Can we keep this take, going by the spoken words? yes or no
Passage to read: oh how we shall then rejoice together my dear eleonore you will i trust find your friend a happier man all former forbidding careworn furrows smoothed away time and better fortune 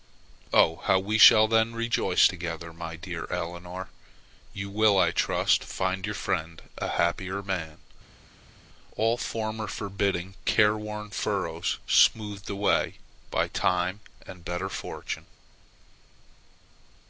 no